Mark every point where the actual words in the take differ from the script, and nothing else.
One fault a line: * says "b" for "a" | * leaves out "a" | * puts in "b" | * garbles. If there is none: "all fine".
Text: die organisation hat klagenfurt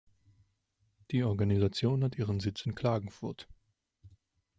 * puts in "ihren sitz in"